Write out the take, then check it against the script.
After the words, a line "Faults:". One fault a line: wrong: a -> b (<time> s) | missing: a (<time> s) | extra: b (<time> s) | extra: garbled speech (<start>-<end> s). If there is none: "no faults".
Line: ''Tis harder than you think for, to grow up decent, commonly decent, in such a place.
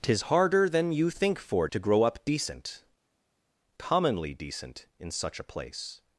''Tis harder than you think for, to grow up decent, commonly decent, in such a place.
Faults:
no faults